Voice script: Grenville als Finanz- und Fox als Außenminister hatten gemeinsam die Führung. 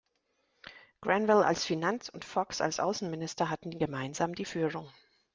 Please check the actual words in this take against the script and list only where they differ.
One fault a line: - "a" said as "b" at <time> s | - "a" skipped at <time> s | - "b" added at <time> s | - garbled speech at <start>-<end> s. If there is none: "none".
none